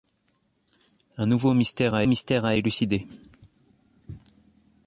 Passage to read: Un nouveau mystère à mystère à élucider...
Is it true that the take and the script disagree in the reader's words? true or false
false